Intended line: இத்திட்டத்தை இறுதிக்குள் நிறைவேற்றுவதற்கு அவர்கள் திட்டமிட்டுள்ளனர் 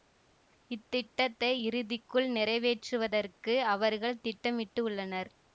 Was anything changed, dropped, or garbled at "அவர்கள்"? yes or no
no